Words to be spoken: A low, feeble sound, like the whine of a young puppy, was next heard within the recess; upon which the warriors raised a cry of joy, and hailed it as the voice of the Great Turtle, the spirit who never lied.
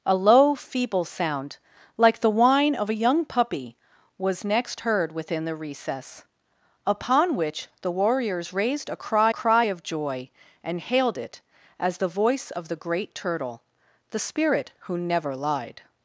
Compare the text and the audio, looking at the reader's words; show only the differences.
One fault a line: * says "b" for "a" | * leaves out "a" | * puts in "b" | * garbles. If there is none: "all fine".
* puts in "cry"